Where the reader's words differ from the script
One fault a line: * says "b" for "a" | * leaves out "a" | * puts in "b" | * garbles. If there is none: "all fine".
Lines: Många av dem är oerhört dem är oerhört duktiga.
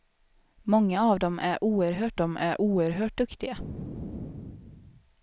all fine